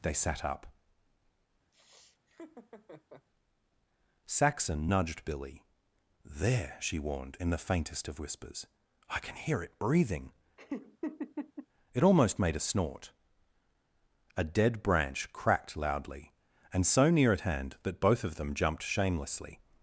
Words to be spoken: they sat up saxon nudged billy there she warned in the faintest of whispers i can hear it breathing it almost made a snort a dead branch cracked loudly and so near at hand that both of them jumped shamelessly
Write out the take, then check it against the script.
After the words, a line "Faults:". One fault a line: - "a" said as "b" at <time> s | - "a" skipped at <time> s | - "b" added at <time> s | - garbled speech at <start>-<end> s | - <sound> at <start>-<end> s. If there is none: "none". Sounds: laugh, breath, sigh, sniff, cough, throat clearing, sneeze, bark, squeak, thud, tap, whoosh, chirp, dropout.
they sat up saxon nudged billy there she warned in the faintest of whispers i can hear it breathing it almost made a snort a dead branch cracked loudly and so near at hand that both of them jumped shamelessly
Faults:
- laugh at 1.7-3.3 s
- laugh at 10.6-11.7 s